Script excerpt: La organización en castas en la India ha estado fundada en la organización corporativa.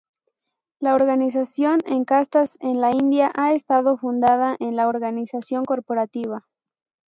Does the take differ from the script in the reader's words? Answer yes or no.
no